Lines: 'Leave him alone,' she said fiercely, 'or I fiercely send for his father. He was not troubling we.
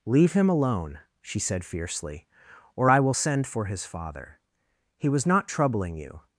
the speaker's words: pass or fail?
fail